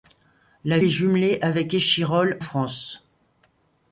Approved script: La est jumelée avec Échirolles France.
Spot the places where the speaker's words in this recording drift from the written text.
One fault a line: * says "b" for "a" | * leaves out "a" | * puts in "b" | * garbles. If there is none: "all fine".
all fine